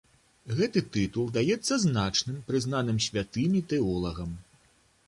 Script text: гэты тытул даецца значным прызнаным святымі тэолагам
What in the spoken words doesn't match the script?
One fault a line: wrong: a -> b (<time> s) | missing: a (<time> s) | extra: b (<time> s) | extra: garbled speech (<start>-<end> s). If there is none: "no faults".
no faults